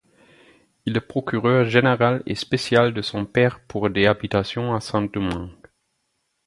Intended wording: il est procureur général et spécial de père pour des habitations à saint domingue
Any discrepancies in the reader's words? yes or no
yes